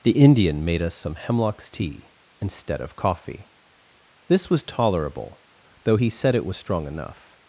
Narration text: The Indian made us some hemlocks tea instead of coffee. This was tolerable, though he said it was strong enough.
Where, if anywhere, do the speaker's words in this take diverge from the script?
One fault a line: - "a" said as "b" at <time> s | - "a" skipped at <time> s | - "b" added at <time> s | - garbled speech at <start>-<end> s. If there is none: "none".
none